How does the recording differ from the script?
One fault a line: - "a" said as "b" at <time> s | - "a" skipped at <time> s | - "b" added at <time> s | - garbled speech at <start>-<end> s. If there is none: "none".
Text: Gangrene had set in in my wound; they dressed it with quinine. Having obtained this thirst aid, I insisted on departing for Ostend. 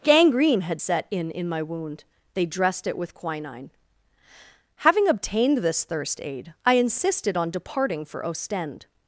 none